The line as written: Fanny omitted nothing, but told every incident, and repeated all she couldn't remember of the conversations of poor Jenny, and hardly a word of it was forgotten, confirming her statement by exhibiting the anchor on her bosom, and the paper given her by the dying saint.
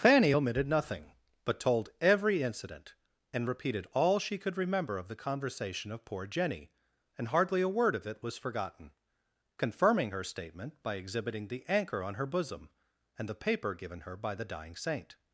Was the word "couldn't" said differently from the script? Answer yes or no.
yes